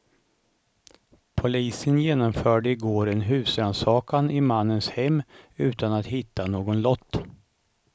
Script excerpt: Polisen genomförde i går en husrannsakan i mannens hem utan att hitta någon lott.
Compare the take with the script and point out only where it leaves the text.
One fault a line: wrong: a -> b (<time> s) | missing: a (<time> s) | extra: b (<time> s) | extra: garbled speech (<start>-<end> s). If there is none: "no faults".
no faults